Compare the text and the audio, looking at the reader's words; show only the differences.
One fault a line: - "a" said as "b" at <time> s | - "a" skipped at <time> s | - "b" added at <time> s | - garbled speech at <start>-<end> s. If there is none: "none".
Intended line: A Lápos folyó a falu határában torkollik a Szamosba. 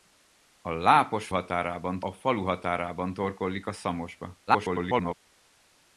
- "folyó" said as "határában" at 1.3 s
- garbled speech at 4.5-5.1 s